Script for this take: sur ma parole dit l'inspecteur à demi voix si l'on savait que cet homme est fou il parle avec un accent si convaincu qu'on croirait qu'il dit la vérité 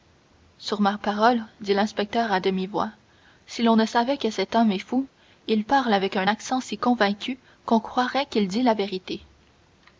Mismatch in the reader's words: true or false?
true